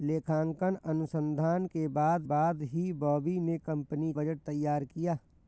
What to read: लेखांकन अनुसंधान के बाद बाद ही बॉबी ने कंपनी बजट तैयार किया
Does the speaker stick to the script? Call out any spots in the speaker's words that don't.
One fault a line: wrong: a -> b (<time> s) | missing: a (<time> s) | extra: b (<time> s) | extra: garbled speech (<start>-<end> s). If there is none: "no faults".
no faults